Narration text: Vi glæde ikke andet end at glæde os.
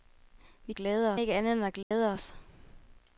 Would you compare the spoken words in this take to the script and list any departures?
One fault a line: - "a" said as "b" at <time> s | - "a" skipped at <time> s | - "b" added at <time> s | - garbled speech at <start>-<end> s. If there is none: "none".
none